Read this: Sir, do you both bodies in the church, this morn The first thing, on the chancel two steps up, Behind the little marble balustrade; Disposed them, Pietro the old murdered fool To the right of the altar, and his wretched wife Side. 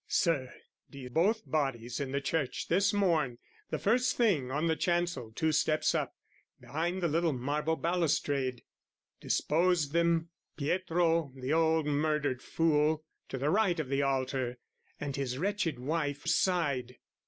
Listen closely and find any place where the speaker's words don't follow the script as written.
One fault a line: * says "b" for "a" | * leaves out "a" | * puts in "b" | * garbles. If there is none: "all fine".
all fine